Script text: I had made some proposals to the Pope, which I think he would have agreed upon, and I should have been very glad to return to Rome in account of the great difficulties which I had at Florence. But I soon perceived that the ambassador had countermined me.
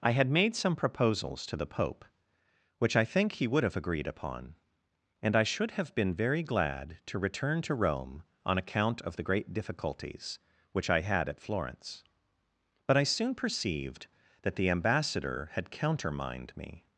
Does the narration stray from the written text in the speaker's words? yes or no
yes